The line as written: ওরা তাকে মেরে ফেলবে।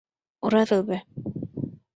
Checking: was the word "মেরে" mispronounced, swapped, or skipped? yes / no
yes